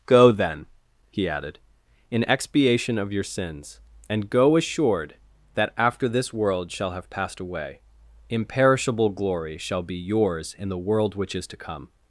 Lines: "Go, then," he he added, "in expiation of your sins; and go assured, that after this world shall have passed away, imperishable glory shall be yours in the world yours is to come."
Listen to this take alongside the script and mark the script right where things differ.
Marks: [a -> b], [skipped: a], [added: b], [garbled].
"Go, then," he [skipped: he] added, "in expiation of your sins; and go assured, that after this world shall have passed away, imperishable glory shall be yours in the world [yours -> which] is to come."